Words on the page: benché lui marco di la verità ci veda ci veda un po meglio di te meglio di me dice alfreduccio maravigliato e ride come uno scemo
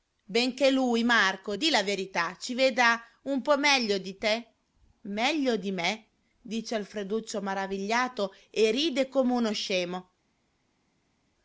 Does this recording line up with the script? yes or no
no